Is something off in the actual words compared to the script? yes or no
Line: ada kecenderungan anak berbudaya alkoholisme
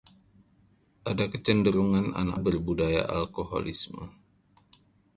no